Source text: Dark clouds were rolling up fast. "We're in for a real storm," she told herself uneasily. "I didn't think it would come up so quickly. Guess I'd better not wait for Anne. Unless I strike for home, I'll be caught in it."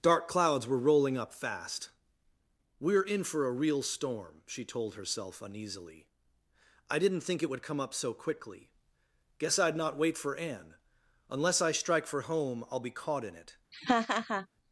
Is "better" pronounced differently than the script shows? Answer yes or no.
yes